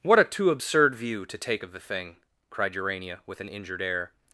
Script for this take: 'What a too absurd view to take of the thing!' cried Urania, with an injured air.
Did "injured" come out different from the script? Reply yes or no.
no